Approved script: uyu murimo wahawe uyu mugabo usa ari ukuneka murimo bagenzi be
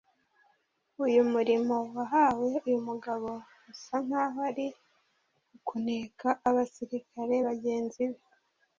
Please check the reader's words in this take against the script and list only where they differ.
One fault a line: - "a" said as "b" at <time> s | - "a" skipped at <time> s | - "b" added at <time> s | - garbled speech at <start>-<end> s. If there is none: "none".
- "nk'aho" added at 4.0 s
- "murimo" said as "abasirikare" at 6.5 s